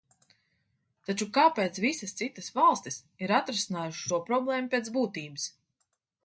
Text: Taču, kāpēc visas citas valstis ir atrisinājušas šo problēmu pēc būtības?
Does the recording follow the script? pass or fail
pass